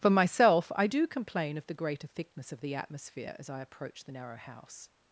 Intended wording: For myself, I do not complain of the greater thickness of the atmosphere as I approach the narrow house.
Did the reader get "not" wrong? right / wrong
wrong